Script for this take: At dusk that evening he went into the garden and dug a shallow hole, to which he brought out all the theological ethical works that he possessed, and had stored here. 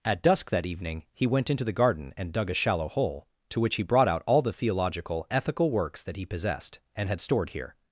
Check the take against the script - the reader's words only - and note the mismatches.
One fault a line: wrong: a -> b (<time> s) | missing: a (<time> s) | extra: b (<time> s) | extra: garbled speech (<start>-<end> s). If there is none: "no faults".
no faults